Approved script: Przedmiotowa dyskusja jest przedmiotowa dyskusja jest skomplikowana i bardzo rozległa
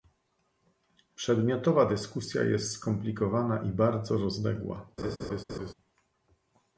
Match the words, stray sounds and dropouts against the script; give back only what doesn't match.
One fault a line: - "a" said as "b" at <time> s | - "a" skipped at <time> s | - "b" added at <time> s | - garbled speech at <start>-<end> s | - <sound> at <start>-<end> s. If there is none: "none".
- "przedmiotowa dyskusja jest" skipped at 2.7 s
- laugh at 5.0-5.7 s